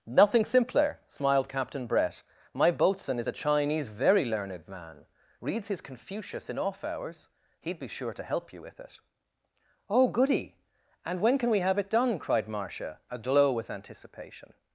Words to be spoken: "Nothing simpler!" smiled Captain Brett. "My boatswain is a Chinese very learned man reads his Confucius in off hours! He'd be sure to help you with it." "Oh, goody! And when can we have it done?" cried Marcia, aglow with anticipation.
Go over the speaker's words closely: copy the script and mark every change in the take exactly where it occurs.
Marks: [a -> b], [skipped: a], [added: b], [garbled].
"Nothing simpler!" smiled Captain Brett. "My boatswain is a Chinese very learned man reads his Confucius in off hours! He'd be sure to help you with it." "Oh, goody! And when can we have it done?" cried Marcia, aglow with anticipation.